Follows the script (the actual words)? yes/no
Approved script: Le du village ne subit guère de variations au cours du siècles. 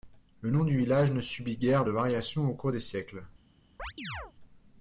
no